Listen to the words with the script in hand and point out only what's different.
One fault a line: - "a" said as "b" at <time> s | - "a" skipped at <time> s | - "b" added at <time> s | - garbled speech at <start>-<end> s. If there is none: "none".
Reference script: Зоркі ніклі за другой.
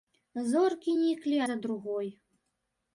none